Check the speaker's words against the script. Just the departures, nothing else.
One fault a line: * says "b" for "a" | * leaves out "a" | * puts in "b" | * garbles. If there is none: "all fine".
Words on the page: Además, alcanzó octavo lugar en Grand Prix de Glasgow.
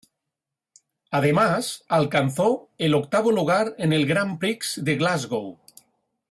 * puts in "el"
* puts in "el"